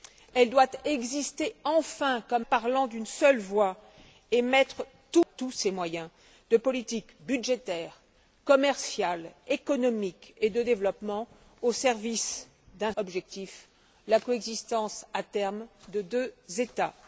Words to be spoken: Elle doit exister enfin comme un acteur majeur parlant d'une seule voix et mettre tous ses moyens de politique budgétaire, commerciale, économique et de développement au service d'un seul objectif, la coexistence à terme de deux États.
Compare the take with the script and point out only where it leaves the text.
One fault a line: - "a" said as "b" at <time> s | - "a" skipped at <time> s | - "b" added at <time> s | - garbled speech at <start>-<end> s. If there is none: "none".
- "un acteur majeur" skipped at 2.5 s
- "seul" skipped at 12.9 s